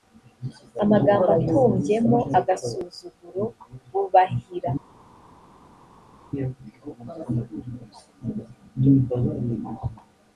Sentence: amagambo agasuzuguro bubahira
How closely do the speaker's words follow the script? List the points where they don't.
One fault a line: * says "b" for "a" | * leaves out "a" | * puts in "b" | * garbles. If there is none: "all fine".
* puts in "atumbyemo"